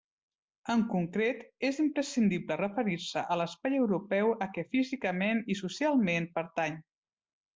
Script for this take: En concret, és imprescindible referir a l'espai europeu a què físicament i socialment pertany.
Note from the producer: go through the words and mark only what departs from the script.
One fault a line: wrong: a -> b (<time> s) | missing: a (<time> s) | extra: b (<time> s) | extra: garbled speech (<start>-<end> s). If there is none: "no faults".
extra: se (3.1 s)